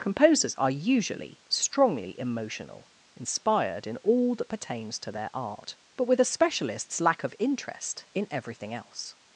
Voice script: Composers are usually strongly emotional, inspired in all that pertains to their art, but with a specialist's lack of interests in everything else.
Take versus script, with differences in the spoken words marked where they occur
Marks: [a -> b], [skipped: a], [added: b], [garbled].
Composers are usually strongly emotional, inspired in all that pertains to their art, but with a specialist's lack of [interests -> interest] in everything else.